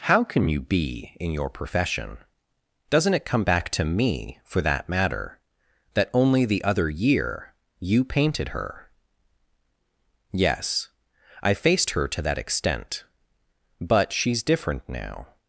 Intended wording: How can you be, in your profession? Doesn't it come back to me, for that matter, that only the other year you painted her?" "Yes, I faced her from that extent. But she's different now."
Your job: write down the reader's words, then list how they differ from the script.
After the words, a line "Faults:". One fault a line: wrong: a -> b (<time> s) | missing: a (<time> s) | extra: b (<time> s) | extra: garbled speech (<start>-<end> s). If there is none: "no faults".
How can you be, in your profession? Doesn't it come back to me, for that matter, that only the other year you painted her?" "Yes, I faced her to that extent. But she's different now."
Faults:
wrong: from -> to (12.1 s)